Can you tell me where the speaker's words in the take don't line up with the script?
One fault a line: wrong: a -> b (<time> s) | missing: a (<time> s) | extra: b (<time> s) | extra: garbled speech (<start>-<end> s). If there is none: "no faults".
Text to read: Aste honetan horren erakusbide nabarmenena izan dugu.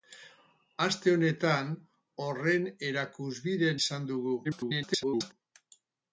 missing: nabarmenena (3.7 s)
extra: garbled speech (4.4-5.3 s)